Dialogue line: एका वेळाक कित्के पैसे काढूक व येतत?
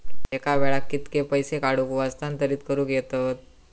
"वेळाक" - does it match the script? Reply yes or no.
yes